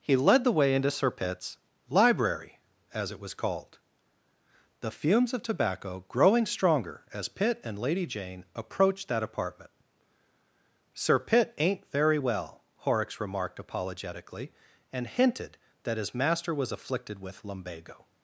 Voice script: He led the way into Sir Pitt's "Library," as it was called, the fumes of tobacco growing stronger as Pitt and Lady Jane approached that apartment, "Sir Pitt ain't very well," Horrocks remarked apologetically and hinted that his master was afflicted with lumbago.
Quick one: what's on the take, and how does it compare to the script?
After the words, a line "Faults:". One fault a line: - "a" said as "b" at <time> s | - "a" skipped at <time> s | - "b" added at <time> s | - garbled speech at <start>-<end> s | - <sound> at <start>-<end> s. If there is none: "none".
He led the way into Sir Pitt's "Library," as it was called, the fumes of tobacco growing stronger as Pitt and Lady Jane approached that apartment, "Sir Pitt ain't very well," Horrocks remarked apologetically and hinted that his master was afflicted with lumbago.
Faults:
none